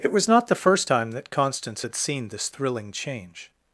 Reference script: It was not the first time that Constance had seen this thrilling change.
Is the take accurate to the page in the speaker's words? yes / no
yes